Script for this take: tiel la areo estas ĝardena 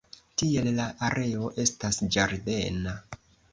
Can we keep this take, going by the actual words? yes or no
yes